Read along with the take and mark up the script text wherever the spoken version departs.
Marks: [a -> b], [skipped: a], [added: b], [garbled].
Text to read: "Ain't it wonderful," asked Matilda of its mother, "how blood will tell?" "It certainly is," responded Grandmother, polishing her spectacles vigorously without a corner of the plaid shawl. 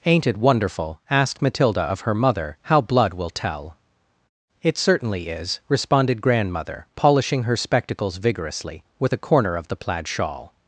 "Ain't it wonderful," asked Matilda of [its -> her] mother, "how blood will tell?" "It certainly is," responded Grandmother, polishing her spectacles vigorously [without -> with] a corner of the plaid shawl.